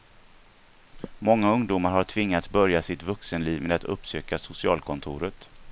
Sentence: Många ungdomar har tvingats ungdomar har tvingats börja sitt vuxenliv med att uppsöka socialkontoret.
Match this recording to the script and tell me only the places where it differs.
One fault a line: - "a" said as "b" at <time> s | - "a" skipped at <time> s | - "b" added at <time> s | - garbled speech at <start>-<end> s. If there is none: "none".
- "ungdomar har tvingats" skipped at 2.5 s